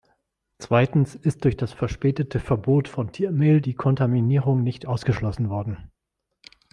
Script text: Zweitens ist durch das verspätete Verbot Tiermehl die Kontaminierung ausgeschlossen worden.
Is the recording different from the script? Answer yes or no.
yes